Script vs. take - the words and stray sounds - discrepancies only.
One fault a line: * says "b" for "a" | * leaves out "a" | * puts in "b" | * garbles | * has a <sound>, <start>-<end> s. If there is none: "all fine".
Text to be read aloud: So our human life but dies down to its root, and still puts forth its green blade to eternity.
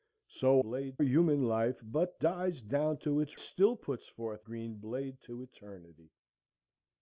* says "blade" for "our"
* leaves out "root and"
* leaves out "its"